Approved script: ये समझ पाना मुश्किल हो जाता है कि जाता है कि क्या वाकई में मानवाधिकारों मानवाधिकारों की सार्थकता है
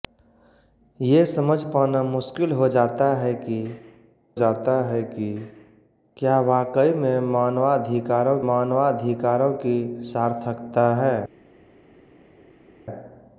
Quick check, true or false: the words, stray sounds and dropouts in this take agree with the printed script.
true